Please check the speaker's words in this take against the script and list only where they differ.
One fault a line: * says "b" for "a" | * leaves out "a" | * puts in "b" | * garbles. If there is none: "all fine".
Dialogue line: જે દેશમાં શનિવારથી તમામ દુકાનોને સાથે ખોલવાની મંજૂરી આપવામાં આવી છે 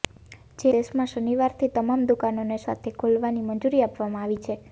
all fine